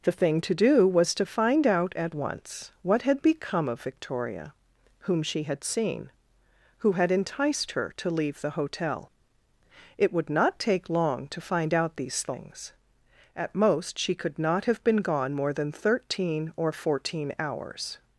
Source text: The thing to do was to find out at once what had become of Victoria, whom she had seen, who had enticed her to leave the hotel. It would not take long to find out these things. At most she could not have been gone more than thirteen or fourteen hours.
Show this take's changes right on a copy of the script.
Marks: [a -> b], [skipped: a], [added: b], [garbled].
The thing to do was to find out at once what had become of Victoria, whom she had seen, who had enticed her to leave the hotel. It would not take long to find out these things. At most she could not have been gone more than thirteen or fourteen hours.